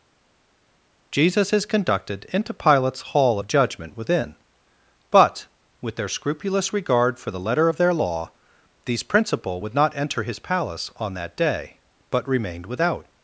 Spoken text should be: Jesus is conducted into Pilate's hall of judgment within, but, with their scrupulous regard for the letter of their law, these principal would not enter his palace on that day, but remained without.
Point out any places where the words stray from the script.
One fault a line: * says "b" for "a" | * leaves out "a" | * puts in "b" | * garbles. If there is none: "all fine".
all fine